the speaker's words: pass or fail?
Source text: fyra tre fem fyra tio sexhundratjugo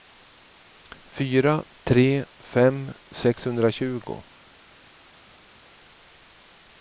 fail